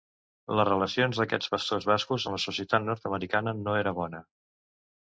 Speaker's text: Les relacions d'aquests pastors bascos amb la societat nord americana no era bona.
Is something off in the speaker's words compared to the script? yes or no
no